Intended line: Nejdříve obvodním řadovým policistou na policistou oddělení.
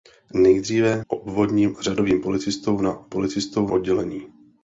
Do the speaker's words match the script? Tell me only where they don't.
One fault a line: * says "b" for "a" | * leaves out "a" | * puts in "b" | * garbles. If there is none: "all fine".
all fine